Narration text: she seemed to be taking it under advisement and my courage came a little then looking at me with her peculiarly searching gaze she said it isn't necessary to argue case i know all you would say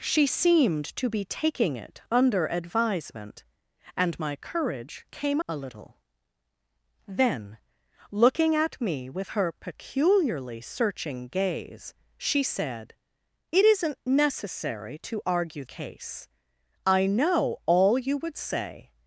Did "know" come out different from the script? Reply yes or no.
no